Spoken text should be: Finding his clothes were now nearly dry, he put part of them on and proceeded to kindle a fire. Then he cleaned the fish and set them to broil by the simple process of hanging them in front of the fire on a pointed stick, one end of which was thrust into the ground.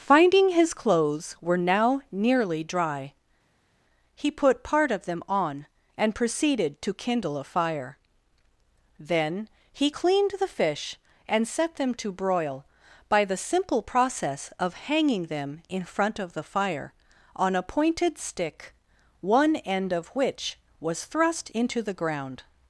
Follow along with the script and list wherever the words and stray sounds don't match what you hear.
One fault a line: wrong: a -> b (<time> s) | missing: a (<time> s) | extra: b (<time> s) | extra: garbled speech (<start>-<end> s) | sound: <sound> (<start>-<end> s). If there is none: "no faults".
no faults